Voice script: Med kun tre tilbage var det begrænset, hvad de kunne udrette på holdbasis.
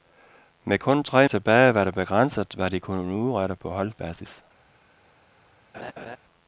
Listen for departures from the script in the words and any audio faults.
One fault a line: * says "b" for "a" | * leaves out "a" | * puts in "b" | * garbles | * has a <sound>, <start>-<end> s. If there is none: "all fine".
* has a laugh, 5.7-6.2 s